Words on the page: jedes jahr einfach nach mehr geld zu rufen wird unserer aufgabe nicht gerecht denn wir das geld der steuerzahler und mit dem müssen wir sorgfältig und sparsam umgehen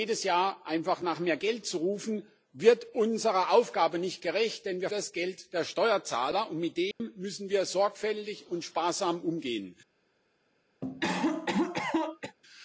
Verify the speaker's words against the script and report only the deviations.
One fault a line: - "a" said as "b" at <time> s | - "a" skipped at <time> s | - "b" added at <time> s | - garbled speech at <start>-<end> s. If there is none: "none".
none